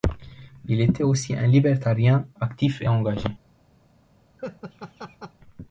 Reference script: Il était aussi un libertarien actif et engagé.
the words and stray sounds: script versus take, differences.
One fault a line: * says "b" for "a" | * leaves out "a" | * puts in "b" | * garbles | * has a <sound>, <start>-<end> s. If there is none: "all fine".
* has a laugh, 4.4-5.3 s